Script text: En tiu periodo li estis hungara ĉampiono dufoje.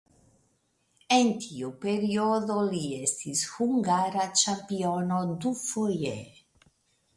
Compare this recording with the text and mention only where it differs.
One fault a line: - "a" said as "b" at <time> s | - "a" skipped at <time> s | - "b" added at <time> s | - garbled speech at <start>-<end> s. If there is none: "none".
none